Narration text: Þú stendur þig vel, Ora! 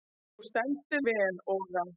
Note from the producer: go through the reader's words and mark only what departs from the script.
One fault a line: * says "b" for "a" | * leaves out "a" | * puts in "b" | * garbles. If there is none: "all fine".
* leaves out "þig"